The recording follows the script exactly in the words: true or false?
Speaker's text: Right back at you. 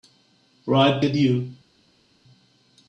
false